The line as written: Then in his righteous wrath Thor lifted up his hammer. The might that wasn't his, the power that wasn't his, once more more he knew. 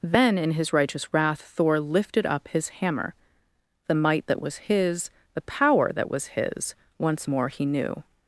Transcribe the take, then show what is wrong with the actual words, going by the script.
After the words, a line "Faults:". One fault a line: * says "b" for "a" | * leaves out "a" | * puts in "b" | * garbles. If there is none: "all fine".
Then in his righteous wrath Thor lifted up his hammer. The might that was his, the power that was his, once more he knew.
Faults:
* says "was" for "wasn't"
* says "was" for "wasn't"
* leaves out "more"